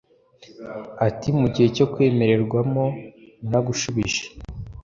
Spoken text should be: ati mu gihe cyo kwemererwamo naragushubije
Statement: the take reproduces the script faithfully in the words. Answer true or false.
true